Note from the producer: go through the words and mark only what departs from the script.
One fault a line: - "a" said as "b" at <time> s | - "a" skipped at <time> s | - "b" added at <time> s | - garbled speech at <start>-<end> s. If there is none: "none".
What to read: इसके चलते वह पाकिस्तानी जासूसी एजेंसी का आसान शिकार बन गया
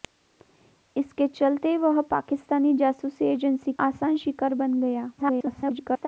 - "का" skipped at 3.7 s
- garbled speech at 5.2-6.1 s